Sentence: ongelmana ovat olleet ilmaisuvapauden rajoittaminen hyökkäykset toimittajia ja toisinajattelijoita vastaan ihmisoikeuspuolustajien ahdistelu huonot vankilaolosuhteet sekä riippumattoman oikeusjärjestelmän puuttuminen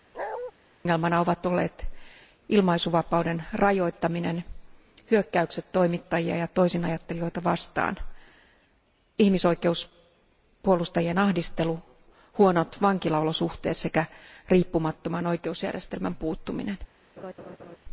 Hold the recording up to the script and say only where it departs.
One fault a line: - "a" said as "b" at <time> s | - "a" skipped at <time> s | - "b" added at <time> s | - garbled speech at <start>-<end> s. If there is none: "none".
none